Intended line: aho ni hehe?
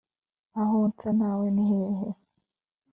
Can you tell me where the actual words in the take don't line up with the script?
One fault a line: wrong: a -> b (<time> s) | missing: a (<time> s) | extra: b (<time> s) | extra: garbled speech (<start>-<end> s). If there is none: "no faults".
extra: nsa nawe (0.9 s)